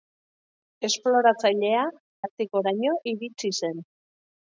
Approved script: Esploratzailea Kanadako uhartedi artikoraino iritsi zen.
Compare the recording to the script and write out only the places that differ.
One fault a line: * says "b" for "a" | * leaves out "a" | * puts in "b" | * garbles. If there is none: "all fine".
* leaves out "Kanadako uhartedi"